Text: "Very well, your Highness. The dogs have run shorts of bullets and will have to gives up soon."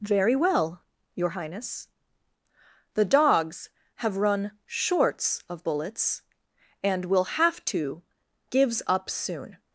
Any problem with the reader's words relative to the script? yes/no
no